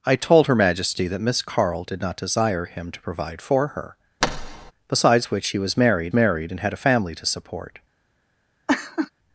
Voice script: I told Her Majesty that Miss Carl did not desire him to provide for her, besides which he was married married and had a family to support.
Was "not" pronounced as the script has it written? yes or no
yes